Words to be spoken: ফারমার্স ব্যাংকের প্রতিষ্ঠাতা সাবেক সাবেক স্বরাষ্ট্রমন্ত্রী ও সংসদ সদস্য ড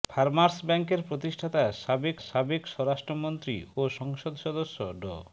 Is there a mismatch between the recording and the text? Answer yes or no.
no